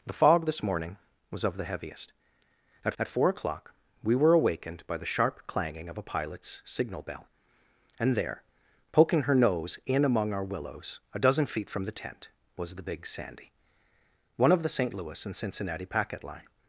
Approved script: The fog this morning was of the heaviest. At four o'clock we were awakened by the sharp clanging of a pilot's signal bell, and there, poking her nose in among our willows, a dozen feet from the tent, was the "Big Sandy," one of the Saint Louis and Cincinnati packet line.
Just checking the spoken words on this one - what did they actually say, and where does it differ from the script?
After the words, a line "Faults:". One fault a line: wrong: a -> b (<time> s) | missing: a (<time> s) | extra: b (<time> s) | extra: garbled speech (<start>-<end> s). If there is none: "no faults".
The fog this morning was of the heaviest. At at four o'clock we were awakened by the sharp clanging of a pilot's signal bell, and there, poking her nose in among our willows, a dozen feet from the tent, was the "Big Sandy," one of the Saint Louis and Cincinnati packet line.
Faults:
extra: at (3.0 s)